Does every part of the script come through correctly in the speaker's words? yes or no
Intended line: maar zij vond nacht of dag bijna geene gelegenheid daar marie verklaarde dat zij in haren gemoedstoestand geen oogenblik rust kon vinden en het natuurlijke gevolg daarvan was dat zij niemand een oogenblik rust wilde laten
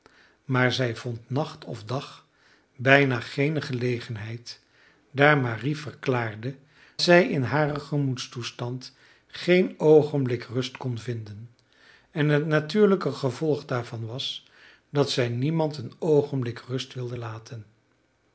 no